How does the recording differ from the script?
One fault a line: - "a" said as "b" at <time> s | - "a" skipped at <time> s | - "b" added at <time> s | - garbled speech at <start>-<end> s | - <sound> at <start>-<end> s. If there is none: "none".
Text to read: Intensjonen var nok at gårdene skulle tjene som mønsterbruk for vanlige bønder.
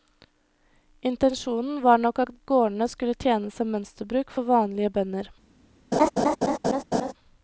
- laugh at 5.9-7.1 s